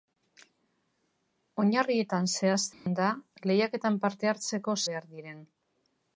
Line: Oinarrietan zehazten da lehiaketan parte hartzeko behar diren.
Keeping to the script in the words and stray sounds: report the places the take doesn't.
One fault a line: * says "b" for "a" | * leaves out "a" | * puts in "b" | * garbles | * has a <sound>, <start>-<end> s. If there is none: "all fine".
* has a dropout, 2.7-2.9 s